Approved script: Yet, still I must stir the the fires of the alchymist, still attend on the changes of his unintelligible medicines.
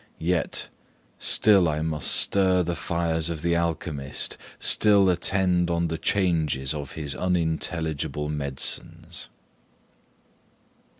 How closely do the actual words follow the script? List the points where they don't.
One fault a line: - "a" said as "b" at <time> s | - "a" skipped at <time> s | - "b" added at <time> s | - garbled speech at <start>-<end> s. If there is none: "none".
- "the" skipped at 2.8 s